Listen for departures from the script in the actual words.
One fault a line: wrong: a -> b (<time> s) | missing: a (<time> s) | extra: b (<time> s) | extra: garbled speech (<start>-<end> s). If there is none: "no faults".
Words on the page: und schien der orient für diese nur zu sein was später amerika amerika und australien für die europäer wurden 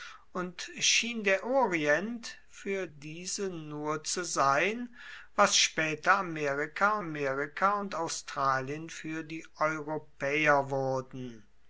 no faults